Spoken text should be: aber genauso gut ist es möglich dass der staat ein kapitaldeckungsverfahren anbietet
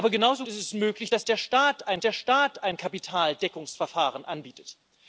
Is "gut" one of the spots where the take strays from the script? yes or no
yes